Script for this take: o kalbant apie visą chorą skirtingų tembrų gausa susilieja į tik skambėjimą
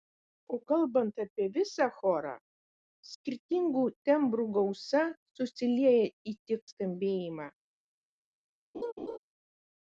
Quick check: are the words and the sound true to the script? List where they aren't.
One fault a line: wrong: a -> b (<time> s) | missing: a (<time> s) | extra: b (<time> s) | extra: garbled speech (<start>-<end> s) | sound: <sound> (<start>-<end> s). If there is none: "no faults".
sound: laugh (8.7-9.2 s)